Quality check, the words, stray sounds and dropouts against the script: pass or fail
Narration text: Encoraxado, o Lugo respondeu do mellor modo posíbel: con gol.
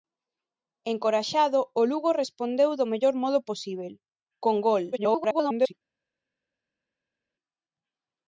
fail